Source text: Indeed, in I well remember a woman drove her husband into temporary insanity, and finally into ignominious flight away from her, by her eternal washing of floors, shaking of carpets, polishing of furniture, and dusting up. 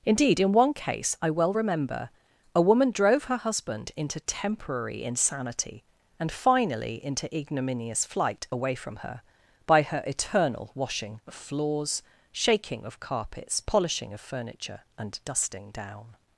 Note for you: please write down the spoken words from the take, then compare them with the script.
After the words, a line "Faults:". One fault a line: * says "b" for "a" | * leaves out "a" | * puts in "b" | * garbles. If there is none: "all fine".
Indeed, in one case I well remember a woman drove her husband into temporary insanity, and finally into ignominious flight away from her, by her eternal washing of floors, shaking of carpets, polishing of furniture, and dusting down.
Faults:
* puts in "one case"
* says "down" for "up"